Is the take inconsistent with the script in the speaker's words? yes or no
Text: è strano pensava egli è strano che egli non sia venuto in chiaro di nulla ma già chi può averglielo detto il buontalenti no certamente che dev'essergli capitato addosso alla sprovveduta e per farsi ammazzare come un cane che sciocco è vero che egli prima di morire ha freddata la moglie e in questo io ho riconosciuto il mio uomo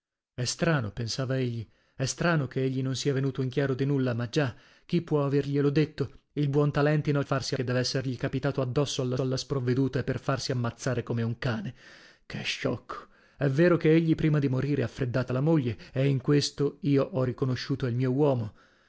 yes